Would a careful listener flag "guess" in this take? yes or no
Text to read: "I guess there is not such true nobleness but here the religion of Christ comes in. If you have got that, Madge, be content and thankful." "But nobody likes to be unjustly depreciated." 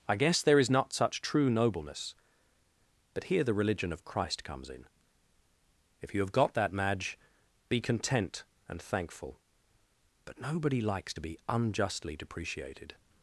no